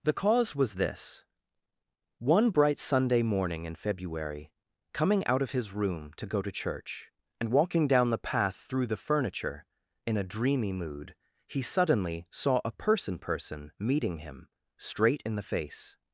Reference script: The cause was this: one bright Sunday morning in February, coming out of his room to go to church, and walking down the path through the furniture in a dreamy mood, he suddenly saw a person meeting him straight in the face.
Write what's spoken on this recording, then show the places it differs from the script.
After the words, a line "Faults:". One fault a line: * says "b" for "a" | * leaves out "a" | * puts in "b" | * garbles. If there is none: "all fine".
The cause was this: one bright Sunday morning in February, coming out of his room to go to church, and walking down the path through the furniture in a dreamy mood, he suddenly saw a person person meeting him straight in the face.
Faults:
* puts in "person"